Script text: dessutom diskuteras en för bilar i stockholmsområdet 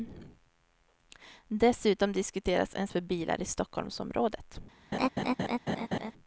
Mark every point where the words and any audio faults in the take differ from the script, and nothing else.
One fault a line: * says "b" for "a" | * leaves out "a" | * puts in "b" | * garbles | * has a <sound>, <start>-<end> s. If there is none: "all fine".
* has a laugh, 4.9-6.1 s